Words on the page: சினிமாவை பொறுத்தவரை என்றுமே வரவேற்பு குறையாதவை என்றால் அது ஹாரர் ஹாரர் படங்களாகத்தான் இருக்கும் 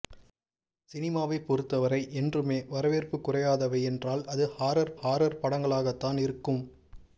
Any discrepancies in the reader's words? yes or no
no